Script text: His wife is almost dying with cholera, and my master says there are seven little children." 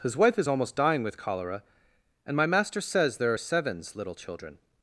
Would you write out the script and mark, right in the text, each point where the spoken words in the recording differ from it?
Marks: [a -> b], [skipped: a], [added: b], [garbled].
His wife is almost dying with cholera, and my master says there are [seven -> sevens] little children."